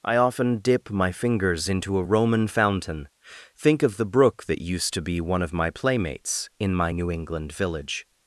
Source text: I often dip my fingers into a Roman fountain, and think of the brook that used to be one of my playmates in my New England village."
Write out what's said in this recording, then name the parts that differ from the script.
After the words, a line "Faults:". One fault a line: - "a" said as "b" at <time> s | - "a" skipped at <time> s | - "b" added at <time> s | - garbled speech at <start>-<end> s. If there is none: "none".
I often dip my fingers into a Roman fountain, think of the brook that used to be one of my playmates in my New England village."
Faults:
- "and" skipped at 3.1 s